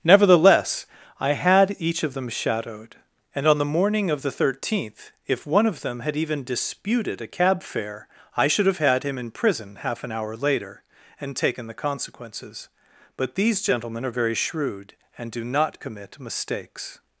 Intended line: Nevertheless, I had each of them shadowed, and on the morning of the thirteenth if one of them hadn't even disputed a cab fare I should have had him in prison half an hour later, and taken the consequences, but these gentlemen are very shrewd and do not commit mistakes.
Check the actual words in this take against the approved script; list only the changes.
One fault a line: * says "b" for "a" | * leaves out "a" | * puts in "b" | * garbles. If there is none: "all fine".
* says "had" for "hadn't"